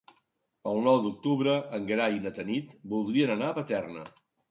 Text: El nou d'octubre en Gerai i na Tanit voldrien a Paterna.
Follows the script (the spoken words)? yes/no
no